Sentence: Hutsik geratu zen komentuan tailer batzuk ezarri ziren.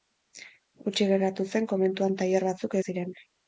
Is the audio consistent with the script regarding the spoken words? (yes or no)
no